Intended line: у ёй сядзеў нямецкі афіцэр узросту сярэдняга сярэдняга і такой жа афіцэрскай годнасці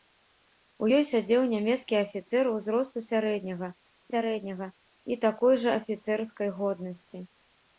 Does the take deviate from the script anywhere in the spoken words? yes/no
no